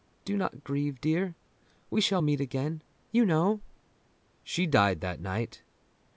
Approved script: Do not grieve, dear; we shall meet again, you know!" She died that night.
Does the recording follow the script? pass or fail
pass